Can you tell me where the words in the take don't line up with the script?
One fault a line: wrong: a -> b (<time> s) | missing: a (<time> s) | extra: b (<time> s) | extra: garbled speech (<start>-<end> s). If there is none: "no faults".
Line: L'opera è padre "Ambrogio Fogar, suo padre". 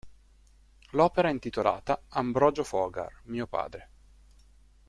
wrong: padre -> intitolata (1.3 s)
wrong: suo -> mio (3.2 s)